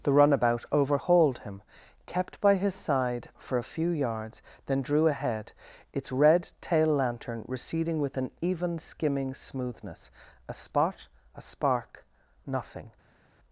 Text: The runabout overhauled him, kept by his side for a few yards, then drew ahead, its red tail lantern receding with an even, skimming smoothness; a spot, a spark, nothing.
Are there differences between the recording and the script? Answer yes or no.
no